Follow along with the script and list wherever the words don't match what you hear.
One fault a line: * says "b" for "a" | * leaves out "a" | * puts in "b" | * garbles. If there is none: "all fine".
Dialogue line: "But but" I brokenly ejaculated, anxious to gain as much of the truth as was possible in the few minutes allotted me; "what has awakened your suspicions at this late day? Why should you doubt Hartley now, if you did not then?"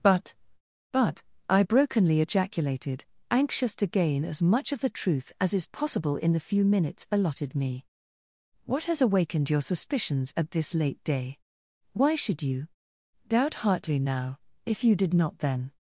* says "is" for "was"